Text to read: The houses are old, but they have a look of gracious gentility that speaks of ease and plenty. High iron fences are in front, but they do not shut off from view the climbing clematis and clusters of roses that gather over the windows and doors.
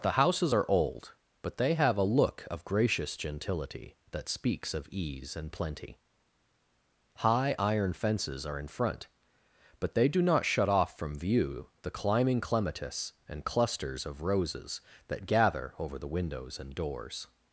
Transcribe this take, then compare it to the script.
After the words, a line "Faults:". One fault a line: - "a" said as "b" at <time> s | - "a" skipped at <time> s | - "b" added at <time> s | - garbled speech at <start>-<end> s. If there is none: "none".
The houses are old, but they have a look of gracious gentility that speaks of ease and plenty. High iron fences are in front, but they do not shut off from view the climbing clematis and clusters of roses that gather over the windows and doors.
Faults:
none